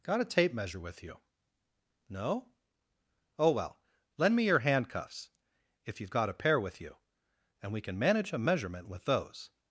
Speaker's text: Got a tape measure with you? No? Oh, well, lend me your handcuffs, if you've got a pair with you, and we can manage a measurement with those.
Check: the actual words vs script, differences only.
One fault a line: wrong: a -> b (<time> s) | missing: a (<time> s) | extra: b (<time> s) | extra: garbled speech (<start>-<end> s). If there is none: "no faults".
no faults